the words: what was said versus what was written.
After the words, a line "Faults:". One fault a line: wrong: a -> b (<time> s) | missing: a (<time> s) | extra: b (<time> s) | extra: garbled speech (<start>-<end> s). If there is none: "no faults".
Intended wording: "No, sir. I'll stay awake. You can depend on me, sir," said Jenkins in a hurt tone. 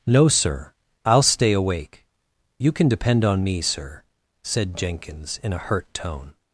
"No, sir. I'll stay awake. You can depend on me, sir," said Jenkins in a hurt tone.
Faults:
no faults